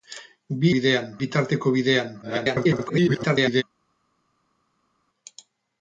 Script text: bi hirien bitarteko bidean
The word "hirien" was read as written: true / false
false